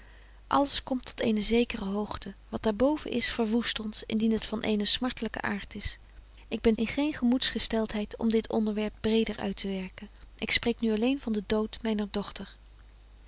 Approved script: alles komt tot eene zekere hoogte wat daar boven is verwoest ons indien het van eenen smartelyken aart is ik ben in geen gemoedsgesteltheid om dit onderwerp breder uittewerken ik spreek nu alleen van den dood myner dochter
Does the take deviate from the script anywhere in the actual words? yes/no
no